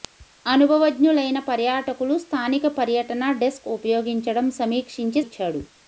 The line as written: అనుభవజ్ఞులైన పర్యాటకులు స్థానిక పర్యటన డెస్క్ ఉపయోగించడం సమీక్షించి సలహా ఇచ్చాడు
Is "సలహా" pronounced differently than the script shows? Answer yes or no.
yes